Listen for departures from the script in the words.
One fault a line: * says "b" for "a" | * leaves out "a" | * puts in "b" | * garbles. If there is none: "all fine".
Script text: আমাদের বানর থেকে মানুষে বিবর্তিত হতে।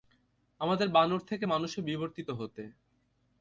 all fine